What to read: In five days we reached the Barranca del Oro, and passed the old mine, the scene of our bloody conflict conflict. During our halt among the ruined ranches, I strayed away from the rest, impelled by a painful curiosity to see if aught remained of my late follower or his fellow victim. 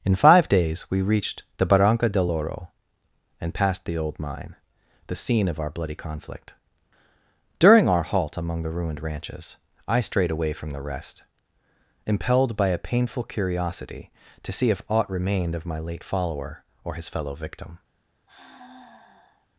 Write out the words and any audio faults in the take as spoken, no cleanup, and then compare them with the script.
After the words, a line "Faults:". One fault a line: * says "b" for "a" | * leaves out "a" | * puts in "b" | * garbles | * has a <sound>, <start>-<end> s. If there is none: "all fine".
In five days we reached the Barranca del Oro, and passed the old mine, the scene of our bloody conflict. During our halt among the ruined ranches, I strayed away from the rest, impelled by a painful curiosity to see if aught remained of my late follower or his fellow victim.
Faults:
* leaves out "conflict"
* has a sigh, 18.3-19.5 s